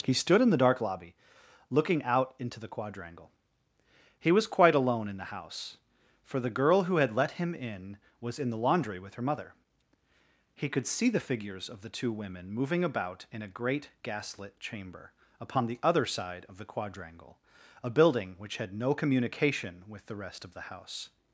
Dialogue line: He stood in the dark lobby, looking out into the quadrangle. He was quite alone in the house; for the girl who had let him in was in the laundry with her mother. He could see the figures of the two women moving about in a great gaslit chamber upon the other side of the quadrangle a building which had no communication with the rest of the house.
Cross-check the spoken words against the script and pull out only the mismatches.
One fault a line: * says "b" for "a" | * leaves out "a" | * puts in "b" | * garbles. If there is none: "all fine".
all fine